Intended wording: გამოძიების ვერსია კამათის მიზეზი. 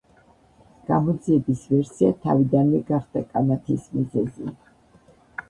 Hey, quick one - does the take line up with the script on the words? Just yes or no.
no